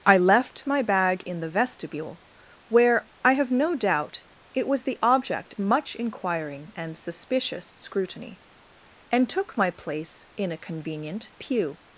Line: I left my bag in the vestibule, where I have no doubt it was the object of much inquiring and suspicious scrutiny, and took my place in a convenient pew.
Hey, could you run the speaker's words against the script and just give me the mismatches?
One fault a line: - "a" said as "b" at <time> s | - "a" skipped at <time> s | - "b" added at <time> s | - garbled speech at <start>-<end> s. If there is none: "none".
- "of" skipped at 5.5 s